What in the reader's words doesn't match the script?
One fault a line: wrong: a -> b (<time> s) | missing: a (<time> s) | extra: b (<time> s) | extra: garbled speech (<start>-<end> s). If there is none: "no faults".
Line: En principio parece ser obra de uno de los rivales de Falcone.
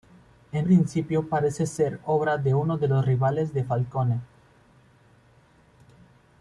no faults